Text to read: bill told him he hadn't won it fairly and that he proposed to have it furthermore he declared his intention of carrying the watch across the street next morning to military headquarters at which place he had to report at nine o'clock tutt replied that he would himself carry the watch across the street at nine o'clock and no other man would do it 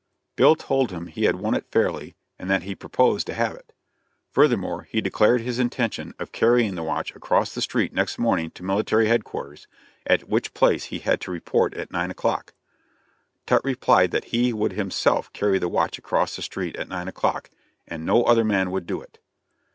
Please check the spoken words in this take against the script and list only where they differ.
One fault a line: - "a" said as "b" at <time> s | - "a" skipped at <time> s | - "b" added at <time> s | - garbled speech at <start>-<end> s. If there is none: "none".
- "hadn't" said as "had" at 1.2 s